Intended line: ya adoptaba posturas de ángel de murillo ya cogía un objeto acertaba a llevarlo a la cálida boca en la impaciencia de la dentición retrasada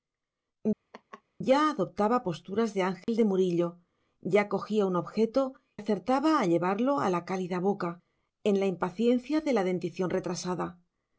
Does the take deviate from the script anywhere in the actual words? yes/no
no